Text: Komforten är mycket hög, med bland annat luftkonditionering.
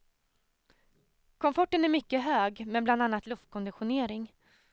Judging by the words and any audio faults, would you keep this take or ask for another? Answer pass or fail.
pass